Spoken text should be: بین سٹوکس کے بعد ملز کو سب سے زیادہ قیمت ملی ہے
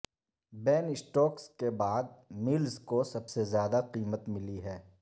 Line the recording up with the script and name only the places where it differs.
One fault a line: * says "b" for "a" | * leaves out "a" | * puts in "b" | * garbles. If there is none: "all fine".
all fine